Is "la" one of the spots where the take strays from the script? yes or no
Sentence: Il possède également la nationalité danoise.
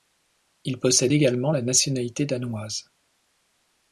no